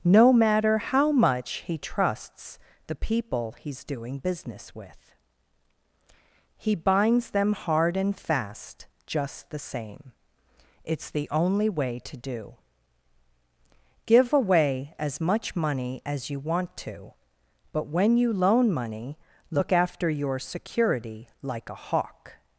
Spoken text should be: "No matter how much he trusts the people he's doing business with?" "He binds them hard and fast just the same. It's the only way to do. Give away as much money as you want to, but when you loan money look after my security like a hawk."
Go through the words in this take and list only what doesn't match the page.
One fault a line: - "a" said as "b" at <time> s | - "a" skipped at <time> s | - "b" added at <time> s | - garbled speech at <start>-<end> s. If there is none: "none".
- "my" said as "your" at 20.1 s